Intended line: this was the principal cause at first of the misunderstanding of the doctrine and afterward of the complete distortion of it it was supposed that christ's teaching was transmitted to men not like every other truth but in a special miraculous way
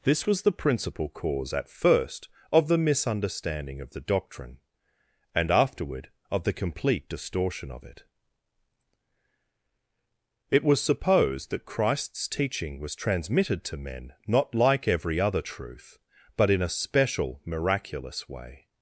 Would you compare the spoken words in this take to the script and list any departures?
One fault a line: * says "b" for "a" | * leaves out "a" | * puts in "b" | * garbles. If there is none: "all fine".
all fine